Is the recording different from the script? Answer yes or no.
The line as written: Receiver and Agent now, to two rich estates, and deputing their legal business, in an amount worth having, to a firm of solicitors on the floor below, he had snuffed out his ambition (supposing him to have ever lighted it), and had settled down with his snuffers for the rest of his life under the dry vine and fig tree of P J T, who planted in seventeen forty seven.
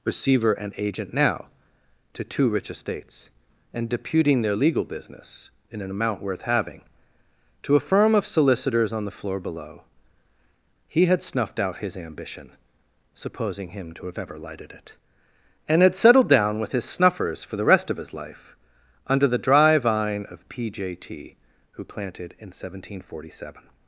yes